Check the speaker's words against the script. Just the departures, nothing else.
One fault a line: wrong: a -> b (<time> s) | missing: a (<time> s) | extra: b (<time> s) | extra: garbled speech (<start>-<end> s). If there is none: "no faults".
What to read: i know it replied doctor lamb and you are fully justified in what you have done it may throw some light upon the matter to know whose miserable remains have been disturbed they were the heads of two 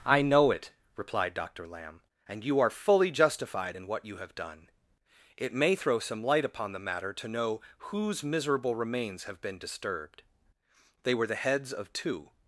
no faults